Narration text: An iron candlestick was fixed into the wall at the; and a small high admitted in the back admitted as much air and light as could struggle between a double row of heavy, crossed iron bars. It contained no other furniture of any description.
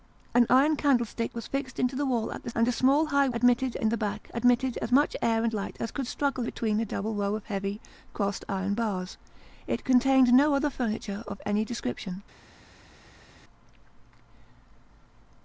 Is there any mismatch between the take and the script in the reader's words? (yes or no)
no